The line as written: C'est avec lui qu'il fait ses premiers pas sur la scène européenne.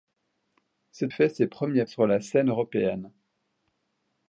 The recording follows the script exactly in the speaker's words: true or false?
false